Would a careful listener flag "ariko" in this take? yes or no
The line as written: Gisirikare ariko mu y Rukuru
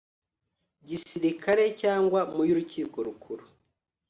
yes